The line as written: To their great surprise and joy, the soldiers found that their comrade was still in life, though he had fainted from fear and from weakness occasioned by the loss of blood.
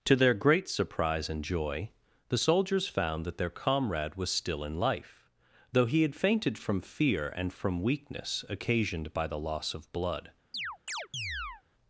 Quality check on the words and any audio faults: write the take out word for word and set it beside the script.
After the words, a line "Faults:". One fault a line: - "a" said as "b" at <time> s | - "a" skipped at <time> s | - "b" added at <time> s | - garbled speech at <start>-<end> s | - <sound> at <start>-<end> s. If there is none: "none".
To their great surprise and joy, the soldiers found that their comrade was still in life, though he had fainted from fear and from weakness occasioned by the loss of blood.
Faults:
- chirp at 10.5-11.6 s